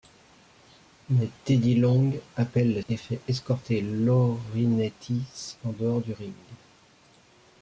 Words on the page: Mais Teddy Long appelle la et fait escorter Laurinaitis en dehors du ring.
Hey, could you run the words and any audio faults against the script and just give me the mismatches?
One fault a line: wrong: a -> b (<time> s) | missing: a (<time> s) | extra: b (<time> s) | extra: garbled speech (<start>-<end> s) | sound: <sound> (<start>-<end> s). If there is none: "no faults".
no faults